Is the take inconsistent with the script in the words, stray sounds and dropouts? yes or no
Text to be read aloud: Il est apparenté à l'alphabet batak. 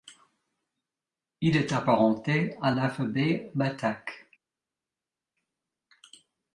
no